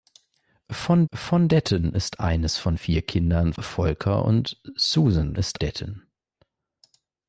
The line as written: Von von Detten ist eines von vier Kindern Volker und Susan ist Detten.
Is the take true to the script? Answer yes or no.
yes